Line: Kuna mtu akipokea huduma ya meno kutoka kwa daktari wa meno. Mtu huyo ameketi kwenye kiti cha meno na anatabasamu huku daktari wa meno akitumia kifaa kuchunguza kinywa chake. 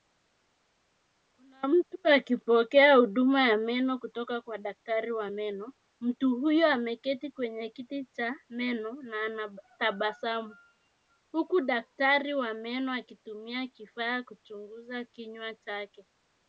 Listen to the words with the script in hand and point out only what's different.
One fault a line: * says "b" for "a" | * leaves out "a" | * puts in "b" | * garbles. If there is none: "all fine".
all fine